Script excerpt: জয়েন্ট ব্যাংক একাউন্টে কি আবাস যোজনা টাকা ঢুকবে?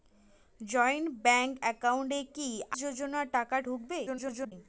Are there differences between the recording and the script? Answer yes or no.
yes